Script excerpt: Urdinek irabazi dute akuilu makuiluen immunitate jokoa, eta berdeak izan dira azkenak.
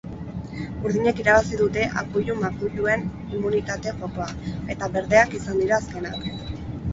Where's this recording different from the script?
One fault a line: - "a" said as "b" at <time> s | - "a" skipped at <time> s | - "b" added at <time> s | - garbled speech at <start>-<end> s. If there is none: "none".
none